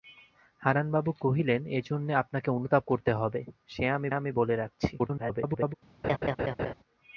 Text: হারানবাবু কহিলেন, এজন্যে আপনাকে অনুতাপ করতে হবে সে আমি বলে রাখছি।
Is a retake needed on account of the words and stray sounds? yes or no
yes